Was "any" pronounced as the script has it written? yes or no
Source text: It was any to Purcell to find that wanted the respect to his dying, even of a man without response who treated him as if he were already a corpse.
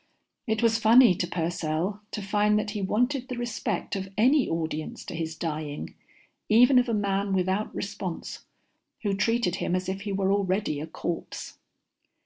no